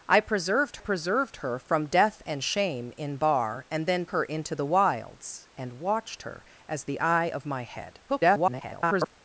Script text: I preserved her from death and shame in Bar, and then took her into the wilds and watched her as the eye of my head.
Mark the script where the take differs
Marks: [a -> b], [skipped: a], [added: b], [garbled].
I preserved [added: preserved] her from death and shame in Bar, and then [skipped: took] her into the wilds and watched her as the eye of my head. [garbled]